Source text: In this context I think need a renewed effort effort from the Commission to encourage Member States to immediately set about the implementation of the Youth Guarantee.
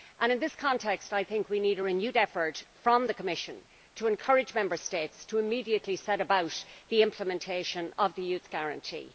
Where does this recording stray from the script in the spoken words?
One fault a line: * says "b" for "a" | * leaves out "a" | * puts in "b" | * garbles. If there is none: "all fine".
* puts in "we"
* leaves out "effort"